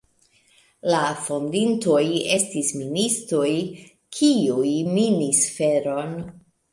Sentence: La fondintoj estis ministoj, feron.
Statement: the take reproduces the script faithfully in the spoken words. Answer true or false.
false